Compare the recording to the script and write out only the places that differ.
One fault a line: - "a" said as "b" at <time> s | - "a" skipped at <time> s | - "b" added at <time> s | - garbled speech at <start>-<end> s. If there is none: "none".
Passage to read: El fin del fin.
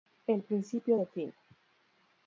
- "fin" said as "principio" at 0.4 s